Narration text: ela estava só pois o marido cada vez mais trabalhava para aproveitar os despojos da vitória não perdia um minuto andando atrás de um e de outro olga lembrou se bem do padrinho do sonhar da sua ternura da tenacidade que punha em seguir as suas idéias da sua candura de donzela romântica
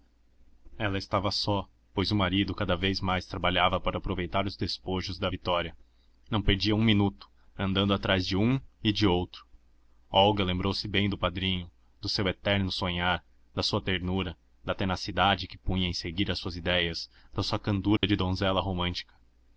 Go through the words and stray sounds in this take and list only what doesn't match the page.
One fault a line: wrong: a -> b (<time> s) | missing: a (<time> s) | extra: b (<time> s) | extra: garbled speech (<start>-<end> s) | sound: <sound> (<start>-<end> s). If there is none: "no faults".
extra: seu eterno (12.1 s)
sound: dropout (18.0-18.0 s)